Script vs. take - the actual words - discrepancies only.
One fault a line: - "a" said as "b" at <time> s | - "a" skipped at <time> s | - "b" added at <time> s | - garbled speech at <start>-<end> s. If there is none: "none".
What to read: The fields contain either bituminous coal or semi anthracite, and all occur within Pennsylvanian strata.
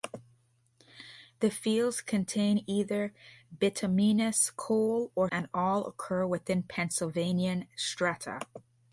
- "semi anthracite" skipped at 5.3 s